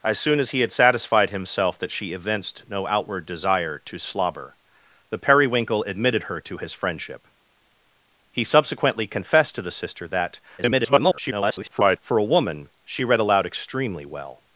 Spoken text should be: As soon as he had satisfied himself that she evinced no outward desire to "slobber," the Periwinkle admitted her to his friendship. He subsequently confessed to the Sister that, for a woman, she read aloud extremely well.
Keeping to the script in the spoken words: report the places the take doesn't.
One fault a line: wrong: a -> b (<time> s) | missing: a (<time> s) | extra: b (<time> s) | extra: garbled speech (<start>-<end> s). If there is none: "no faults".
extra: garbled speech (10.6-12.0 s)